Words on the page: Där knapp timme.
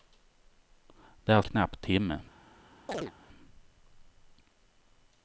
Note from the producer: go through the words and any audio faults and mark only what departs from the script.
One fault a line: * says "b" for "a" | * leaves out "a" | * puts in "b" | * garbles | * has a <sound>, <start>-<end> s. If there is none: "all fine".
* has a chirp, 2.9-3.1 s